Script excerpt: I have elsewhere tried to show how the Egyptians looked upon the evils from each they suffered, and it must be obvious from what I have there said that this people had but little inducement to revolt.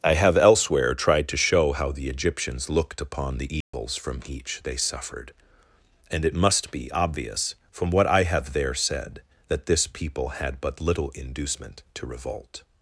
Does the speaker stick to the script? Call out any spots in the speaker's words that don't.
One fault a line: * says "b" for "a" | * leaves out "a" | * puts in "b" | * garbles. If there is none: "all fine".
all fine